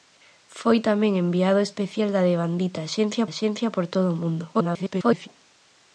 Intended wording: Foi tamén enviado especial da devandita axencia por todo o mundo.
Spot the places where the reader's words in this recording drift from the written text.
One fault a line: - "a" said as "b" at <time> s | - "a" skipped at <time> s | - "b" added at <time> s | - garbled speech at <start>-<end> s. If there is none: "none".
- "axencia" added at 3.3 s
- garbled speech at 4.5-5.3 s